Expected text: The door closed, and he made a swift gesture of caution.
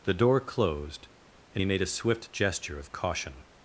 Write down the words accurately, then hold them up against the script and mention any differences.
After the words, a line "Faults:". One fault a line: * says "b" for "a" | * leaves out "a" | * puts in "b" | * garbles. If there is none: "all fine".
The door closed, and he made a swift gesture of caution.
Faults:
all fine